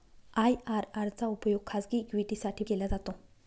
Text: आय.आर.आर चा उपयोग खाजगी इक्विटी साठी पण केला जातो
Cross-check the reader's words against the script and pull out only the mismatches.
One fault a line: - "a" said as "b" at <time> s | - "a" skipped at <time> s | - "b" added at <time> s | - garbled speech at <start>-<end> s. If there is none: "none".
- "पण" skipped at 2.6 s